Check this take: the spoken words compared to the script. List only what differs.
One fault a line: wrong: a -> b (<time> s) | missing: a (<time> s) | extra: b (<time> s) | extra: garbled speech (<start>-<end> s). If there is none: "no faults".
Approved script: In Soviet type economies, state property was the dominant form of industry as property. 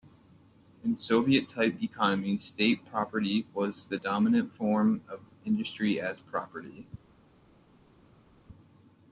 no faults